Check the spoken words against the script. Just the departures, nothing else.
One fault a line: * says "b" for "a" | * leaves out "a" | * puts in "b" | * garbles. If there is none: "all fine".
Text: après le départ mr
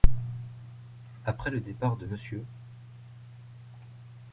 * puts in "de"